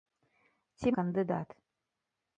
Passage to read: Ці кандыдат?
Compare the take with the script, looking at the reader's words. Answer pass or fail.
pass